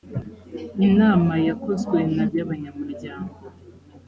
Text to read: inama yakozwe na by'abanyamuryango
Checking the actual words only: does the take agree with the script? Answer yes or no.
yes